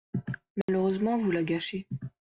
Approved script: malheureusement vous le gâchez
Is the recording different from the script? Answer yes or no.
yes